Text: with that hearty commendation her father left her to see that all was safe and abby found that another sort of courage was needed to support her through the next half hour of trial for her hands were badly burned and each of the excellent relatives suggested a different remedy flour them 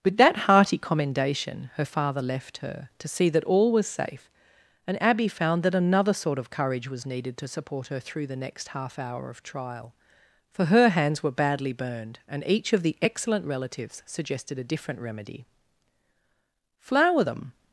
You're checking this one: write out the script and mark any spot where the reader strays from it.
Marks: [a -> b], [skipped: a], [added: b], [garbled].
with that hearty commendation her father left her to see that all was safe and abby found that another sort of courage was needed to support her through the next half hour of trial for her hands were badly burned and each of the excellent relatives suggested a different remedy flour them